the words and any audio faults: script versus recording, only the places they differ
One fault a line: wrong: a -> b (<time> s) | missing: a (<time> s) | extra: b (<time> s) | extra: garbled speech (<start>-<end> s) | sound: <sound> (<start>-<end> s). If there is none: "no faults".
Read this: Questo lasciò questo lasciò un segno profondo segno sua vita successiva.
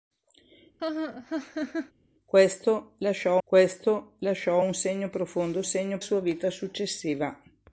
sound: laugh (0.8-1.9 s)